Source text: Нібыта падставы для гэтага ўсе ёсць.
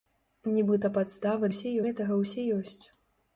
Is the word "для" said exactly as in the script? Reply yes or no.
no